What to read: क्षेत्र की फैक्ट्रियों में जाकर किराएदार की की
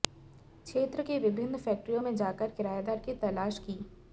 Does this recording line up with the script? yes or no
no